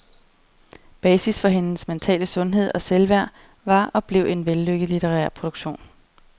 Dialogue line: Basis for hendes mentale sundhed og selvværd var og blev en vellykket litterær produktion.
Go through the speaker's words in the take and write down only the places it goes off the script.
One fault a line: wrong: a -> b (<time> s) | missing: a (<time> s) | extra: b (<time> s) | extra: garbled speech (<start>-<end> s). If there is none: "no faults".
no faults